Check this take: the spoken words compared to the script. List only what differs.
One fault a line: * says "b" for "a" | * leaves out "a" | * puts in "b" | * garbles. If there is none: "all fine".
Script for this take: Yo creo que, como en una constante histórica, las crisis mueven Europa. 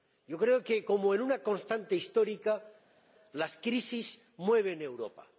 all fine